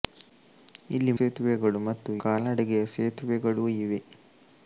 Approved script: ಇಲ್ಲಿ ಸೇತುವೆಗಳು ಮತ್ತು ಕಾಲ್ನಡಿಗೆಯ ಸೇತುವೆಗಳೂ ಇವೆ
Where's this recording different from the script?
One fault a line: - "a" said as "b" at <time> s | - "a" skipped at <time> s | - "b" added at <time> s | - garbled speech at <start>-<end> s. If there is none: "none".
none